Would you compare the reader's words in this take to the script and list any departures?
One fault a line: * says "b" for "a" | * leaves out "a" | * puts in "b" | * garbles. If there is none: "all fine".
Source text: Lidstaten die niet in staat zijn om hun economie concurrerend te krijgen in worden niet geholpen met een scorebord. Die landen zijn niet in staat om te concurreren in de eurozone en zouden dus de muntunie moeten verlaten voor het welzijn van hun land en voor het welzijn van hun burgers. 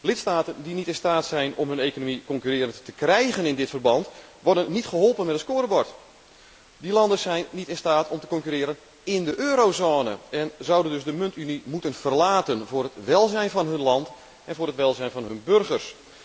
* puts in "dit verband"